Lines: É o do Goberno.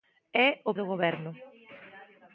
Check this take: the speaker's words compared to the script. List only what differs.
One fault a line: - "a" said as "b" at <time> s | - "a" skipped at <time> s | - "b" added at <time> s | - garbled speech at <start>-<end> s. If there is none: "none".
none